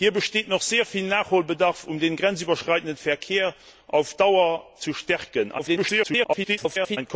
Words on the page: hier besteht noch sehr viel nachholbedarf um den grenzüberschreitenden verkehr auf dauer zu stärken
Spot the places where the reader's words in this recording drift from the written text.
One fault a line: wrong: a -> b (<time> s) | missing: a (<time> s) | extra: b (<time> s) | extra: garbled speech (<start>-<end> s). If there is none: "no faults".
extra: garbled speech (5.6-7.0 s)